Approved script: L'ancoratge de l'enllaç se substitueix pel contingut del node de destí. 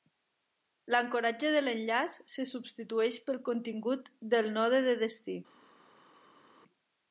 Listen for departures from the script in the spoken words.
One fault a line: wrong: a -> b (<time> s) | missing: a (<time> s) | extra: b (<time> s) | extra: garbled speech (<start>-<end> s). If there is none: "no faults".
no faults